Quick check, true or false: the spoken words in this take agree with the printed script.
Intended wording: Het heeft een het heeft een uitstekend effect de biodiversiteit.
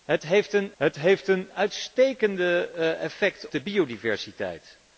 true